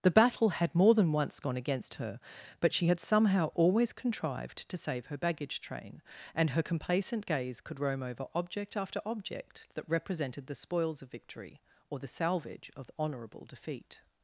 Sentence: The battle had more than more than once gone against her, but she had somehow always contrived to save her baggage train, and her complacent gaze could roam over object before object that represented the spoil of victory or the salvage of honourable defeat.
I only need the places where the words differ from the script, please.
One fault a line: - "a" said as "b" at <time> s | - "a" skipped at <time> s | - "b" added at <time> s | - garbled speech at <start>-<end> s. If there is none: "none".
- "more than" skipped at 1.1 s
- "before" said as "after" at 8.8 s
- "spoil" said as "spoils" at 10.6 s